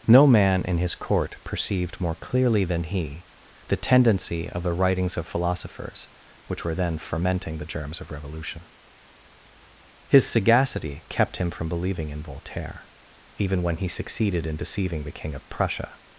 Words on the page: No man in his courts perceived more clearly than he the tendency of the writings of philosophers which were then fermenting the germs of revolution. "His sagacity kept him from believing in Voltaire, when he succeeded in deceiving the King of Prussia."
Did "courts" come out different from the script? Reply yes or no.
yes